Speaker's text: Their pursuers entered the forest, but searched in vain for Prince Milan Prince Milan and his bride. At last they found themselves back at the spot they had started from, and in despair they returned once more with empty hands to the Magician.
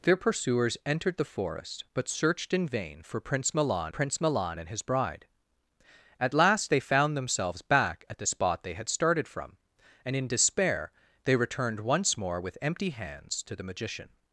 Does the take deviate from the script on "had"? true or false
false